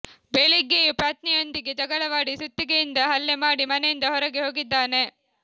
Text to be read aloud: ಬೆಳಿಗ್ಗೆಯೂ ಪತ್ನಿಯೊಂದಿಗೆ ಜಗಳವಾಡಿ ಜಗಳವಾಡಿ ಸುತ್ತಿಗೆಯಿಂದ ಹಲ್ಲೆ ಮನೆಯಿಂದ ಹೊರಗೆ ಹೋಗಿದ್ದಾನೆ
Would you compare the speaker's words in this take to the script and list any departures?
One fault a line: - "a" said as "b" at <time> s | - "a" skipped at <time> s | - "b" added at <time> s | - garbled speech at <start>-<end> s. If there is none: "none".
- "ಜಗಳವಾಡಿ" skipped at 2.4 s
- "ಮಾಡಿ" added at 3.5 s